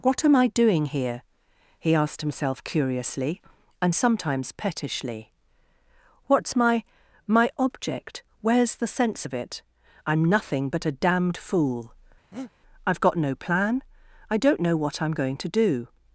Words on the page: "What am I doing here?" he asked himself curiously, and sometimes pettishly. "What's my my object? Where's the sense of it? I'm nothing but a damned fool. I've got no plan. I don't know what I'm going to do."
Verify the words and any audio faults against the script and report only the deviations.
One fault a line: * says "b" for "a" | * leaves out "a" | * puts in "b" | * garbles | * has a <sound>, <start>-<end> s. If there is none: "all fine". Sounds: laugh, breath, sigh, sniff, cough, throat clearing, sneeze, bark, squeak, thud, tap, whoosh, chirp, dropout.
* has a breath, 12.3-12.5 s